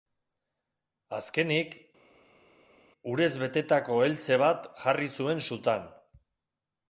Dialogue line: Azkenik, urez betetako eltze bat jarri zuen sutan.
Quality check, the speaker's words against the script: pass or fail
pass